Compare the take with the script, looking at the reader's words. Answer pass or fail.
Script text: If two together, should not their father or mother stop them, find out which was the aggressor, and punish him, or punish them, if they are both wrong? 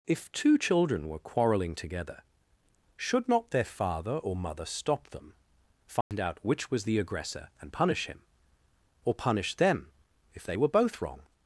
fail